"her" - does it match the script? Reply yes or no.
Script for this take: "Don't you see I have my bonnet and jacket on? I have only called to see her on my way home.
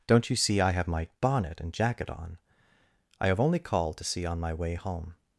no